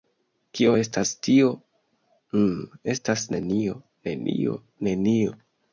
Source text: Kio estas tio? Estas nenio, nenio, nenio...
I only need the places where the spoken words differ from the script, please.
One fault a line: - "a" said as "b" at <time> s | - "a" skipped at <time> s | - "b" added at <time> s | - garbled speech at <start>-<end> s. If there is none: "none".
- "Mmm" added at 2.4 s